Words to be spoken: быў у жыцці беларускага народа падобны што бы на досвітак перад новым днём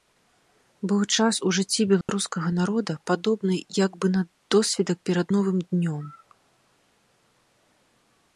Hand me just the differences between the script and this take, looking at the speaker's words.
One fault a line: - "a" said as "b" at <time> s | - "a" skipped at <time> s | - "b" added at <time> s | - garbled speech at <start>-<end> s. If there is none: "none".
- "час" added at 1.2 s
- "што" said as "як" at 3.8 s